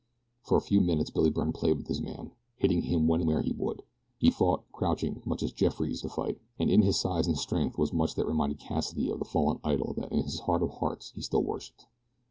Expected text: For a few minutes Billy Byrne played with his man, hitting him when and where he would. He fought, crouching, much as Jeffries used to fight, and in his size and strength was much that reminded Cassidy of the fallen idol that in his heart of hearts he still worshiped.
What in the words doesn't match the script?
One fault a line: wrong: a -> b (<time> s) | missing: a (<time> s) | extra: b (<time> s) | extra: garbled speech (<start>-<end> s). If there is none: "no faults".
missing: and (3.2 s)
missing: used (6.0 s)